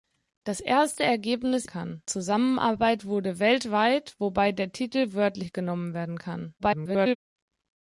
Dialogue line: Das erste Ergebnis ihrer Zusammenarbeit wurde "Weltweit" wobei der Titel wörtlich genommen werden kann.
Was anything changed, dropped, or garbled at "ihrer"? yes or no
yes